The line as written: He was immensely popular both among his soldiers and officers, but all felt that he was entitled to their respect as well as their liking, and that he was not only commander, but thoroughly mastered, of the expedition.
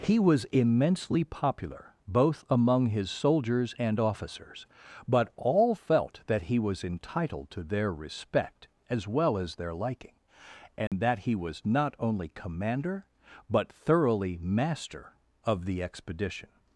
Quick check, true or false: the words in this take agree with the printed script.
false